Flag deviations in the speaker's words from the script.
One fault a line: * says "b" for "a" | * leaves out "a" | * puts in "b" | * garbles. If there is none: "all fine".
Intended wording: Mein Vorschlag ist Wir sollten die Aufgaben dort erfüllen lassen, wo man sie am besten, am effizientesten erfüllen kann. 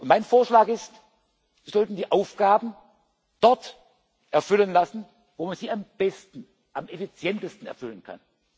all fine